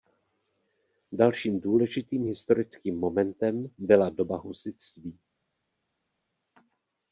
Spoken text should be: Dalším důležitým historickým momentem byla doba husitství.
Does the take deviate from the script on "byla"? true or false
false